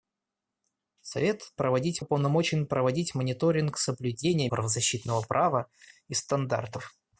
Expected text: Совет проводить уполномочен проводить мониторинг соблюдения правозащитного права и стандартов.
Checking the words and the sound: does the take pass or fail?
pass